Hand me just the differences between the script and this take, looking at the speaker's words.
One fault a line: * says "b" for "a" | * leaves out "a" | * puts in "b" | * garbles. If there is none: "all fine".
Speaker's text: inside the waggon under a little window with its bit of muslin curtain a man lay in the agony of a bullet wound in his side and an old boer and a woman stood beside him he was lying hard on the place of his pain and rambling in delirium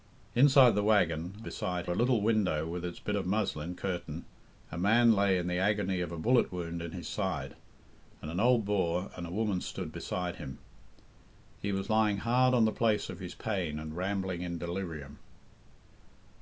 * says "beside" for "under"